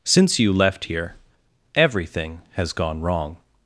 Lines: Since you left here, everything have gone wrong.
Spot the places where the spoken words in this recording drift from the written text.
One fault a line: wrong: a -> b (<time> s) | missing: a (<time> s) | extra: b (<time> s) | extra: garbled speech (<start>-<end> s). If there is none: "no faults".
wrong: have -> has (2.5 s)